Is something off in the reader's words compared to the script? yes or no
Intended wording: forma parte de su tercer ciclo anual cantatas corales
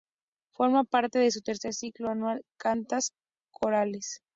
no